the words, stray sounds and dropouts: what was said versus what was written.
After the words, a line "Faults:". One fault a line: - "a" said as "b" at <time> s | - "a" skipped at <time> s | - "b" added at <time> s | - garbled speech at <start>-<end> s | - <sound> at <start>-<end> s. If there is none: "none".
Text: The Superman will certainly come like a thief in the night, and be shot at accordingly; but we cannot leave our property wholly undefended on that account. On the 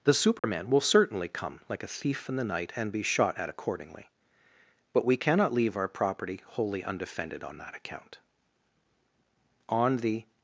The Superman will certainly come like a thief in the night, and be shot at accordingly; but we cannot leave our property wholly undefended on that account. On the
Faults:
- dropout at 0.4-0.4 s